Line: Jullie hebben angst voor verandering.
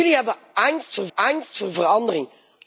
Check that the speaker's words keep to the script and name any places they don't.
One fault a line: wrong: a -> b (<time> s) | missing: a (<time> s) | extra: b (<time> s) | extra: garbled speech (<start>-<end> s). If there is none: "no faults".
extra: angst voor (1.1 s)